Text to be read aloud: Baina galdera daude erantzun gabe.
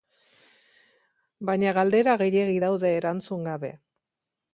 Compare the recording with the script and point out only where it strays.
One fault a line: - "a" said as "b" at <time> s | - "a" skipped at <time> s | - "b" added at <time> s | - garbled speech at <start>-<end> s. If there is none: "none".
- "gehiegi" added at 2.2 s